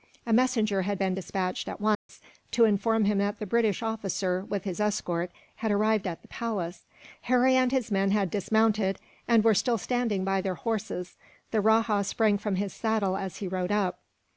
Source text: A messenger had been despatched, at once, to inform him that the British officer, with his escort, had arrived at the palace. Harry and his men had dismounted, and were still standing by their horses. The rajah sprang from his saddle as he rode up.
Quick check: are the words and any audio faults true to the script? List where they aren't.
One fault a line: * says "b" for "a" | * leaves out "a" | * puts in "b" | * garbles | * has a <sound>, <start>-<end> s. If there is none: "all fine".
* has a dropout, 1.9-2.1 s